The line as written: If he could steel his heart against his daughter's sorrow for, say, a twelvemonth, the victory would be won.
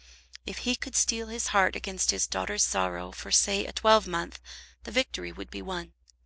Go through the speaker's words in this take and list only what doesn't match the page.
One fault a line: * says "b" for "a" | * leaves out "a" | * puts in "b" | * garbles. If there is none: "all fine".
all fine